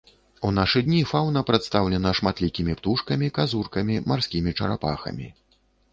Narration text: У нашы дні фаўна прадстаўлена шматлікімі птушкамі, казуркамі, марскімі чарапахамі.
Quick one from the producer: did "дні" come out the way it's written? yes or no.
yes